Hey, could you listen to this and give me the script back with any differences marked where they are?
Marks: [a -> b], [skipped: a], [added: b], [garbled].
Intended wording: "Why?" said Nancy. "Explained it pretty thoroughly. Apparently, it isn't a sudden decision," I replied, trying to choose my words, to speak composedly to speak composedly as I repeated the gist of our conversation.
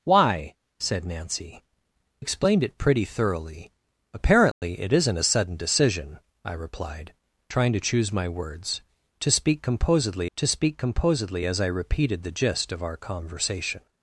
"Why?" said Nancy. "Explained it pretty thoroughly. Apparently, it isn't a sudden decision," I replied, trying to choose my words, to speak composedly to speak composedly as I repeated the gist of our conversation.